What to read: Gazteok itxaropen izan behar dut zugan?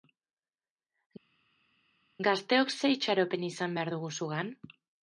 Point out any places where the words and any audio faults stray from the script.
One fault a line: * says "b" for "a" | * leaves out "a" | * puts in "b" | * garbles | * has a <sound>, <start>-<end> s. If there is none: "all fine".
* puts in "ze"
* says "dugu" for "dut"